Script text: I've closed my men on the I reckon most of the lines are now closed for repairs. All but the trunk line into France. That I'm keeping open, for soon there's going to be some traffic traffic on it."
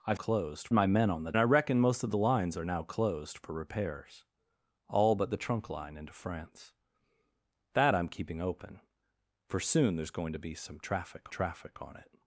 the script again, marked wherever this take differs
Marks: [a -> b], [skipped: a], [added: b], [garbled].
I've closed my men on the I reckon most of the lines are now closed for repairs. All but the trunk line into France. That I'm keeping open, for soon there's going to be some traffic traffic on it."